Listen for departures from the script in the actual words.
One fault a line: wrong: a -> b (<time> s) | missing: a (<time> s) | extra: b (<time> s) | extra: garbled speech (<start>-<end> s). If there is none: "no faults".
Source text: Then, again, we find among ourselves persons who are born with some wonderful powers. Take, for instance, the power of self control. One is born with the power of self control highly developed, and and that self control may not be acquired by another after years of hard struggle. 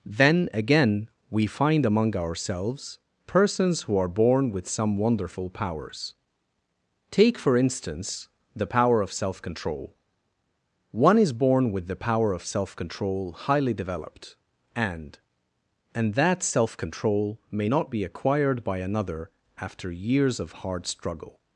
no faults